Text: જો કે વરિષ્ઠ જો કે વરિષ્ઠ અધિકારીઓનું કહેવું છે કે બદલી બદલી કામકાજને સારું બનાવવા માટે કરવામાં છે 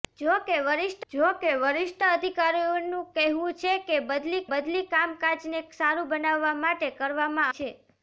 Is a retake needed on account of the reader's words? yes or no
no